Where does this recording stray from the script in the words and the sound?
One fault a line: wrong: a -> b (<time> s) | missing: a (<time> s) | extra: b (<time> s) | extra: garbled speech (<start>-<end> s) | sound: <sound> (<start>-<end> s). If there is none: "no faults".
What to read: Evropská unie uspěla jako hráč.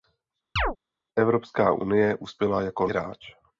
sound: chirp (0.6-0.8 s)